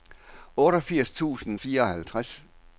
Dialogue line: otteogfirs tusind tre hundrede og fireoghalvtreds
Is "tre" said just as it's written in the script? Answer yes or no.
no